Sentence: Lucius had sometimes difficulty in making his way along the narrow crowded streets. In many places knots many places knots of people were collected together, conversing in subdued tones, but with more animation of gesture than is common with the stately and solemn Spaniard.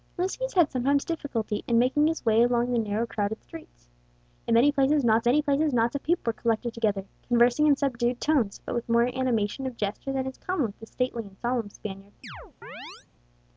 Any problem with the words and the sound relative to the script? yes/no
yes